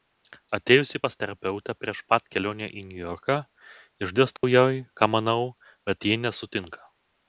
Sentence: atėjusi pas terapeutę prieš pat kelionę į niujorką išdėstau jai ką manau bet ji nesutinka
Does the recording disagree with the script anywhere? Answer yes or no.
no